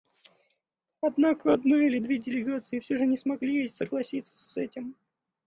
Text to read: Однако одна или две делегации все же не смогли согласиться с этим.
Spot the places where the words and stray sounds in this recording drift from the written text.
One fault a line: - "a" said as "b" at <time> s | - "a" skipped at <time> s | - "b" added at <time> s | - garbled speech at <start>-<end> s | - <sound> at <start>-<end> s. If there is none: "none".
- "с" added at 4.5 s